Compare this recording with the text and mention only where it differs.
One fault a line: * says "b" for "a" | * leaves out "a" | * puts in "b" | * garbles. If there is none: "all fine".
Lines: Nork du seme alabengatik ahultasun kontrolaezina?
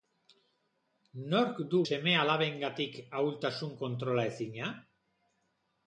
all fine